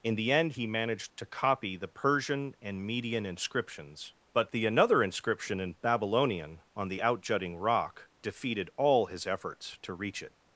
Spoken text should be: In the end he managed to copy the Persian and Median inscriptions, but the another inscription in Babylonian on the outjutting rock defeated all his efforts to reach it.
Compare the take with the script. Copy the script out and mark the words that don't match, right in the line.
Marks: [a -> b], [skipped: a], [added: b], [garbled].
In the end he managed to copy the Persian and Median inscriptions, but the another inscription in Babylonian on the outjutting rock defeated all his efforts to reach it.